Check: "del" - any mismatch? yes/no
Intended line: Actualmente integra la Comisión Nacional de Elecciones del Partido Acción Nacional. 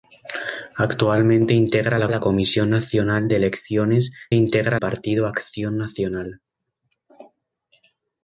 yes